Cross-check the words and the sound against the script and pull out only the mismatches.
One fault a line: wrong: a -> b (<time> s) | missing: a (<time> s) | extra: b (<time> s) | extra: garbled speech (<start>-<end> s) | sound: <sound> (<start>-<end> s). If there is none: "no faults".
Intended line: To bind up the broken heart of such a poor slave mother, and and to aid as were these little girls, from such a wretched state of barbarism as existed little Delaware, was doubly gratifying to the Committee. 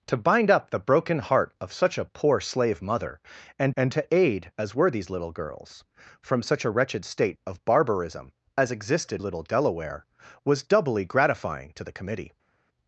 no faults